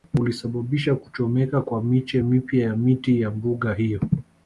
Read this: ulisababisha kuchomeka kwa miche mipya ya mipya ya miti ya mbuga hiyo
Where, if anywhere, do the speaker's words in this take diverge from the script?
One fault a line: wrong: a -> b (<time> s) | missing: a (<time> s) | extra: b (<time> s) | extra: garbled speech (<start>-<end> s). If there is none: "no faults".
missing: mipya ya (2.8 s)